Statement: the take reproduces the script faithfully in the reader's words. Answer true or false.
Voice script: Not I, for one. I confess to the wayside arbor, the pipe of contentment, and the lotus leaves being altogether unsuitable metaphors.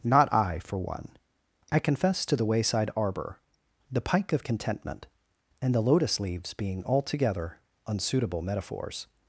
false